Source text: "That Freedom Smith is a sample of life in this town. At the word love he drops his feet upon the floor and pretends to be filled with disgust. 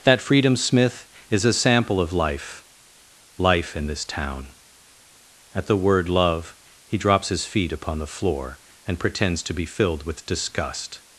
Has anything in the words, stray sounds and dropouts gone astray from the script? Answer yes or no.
yes